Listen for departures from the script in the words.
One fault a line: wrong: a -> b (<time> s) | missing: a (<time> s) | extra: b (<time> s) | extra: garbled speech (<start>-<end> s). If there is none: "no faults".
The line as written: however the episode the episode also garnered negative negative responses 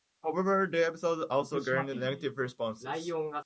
missing: the episode (1.3 s)
missing: negative (2.4 s)